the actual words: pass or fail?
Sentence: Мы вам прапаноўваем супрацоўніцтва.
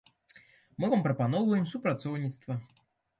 pass